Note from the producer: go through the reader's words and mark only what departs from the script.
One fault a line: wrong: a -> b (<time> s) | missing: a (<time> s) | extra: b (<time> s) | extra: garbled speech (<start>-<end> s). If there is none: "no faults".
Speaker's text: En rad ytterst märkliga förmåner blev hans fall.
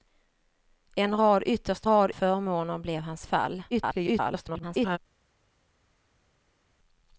wrong: märkliga -> rad (1.8 s)
extra: garbled speech (3.7-5.0 s)